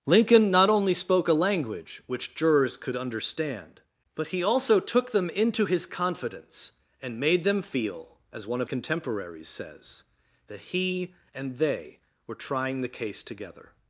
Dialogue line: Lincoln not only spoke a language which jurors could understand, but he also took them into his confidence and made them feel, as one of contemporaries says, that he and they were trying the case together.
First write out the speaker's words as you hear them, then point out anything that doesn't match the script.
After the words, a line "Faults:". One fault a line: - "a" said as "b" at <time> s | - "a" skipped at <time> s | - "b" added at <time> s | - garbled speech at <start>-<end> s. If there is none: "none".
Lincoln not only spoke a language which jurors could understand, but he also took them into his confidence and made them feel, as one of contemporaries says, that he and they were trying the case together.
Faults:
none